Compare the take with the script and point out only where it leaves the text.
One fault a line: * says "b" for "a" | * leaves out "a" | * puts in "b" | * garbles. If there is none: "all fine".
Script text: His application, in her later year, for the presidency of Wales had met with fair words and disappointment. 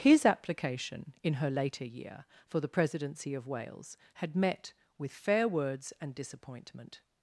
all fine